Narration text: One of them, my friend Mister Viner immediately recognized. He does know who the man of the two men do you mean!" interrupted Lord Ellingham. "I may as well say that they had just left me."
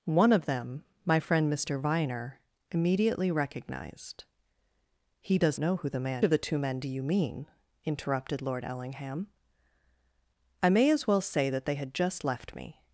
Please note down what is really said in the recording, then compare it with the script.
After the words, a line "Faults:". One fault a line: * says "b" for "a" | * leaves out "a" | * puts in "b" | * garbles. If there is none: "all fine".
One of them, my friend Mister Viner immediately recognized. He does know who the man of the two men do you mean!" interrupted Lord Ellingham. "I may as well say that they had just left me."
Faults:
all fine